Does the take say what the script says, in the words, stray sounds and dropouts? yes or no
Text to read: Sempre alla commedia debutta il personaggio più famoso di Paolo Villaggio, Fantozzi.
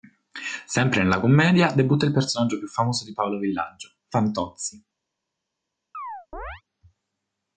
no